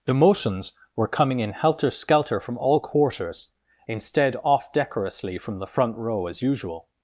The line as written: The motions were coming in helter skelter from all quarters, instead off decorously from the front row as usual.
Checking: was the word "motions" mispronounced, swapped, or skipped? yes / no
no